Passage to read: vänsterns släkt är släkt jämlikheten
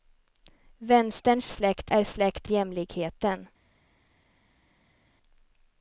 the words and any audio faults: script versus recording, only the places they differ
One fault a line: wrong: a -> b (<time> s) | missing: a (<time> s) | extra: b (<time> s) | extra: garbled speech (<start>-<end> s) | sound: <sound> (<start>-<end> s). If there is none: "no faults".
no faults